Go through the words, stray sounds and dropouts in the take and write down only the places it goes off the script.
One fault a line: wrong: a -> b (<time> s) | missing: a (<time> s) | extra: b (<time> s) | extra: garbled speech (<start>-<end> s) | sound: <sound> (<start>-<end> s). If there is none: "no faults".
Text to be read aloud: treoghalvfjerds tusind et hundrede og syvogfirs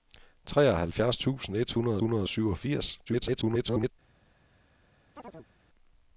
extra: hundrede (2.0 s)
extra: garbled speech (3.1-3.9 s)
sound: chirp (5.1-5.5 s)